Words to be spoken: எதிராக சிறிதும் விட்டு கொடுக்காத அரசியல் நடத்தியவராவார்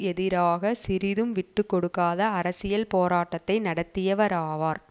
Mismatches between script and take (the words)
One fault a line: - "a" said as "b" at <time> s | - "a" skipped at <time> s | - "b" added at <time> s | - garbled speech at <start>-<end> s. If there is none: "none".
- "போராட்டத்தை" added at 2.9 s